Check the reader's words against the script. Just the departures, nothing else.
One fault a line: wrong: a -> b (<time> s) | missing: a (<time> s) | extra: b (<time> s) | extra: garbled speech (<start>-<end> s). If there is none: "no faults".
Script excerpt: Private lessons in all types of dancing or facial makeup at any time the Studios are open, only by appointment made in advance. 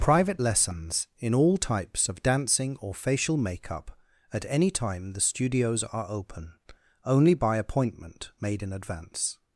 no faults